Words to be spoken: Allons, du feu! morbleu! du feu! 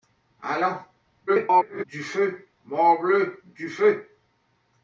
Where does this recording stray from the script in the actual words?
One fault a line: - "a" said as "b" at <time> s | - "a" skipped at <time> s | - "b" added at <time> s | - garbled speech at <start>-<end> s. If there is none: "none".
- garbled speech at 1.3-1.8 s